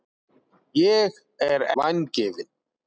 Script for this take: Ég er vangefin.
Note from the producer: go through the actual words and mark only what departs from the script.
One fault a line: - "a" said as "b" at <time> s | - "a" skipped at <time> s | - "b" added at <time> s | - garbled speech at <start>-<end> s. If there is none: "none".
none